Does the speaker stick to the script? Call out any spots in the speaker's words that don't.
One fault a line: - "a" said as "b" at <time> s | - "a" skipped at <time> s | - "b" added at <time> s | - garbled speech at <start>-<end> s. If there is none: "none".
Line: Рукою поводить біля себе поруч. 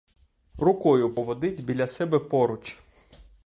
none